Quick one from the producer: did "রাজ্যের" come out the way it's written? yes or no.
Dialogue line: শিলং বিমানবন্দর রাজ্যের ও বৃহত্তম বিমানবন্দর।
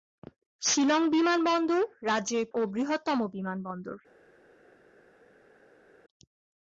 yes